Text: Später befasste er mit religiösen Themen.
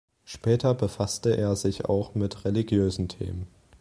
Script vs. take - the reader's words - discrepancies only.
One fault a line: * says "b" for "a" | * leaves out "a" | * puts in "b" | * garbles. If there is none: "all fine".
* puts in "sich auch"